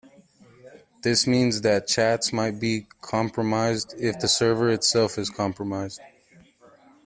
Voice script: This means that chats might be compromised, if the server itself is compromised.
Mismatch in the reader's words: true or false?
false